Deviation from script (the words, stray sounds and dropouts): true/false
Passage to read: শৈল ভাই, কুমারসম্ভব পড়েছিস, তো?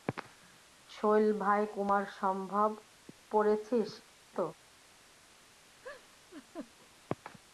true